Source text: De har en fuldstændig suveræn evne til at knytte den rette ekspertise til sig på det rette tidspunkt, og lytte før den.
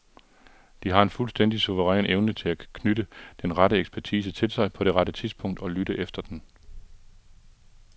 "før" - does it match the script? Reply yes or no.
no